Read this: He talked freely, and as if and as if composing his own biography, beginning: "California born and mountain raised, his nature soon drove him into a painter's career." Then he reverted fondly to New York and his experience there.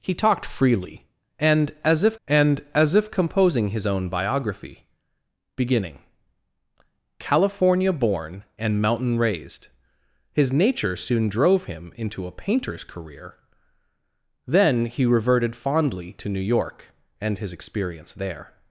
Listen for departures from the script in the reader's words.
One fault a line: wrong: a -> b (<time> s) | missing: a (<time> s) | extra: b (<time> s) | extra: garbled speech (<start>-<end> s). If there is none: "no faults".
no faults